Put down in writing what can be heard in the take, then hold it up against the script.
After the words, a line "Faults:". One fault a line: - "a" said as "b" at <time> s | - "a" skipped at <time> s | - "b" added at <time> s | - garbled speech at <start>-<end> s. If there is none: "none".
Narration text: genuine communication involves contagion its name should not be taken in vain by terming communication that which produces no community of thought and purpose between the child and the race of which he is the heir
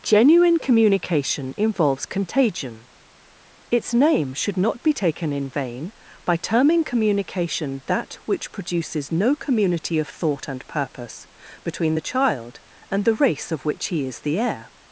genuine communication involves contagion its name should not be taken in vain by terming communication that which produces no community of thought and purpose between the child and the race of which he is the heir
Faults:
none